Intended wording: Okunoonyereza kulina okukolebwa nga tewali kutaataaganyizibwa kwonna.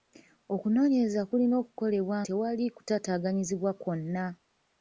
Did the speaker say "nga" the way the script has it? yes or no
no